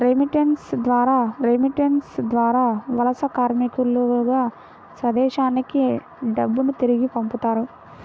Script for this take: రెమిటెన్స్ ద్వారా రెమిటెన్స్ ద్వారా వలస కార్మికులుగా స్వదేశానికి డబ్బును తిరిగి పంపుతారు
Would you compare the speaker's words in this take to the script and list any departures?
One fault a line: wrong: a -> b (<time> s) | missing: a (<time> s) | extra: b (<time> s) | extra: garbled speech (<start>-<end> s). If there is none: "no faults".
no faults